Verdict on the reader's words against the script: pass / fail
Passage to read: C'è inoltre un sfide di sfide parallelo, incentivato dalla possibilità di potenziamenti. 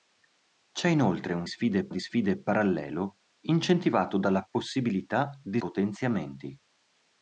pass